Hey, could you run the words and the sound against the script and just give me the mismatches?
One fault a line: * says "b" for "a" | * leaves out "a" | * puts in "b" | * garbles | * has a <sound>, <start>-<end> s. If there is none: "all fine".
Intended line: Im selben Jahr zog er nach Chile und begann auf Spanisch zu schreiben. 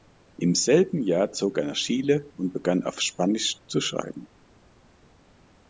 all fine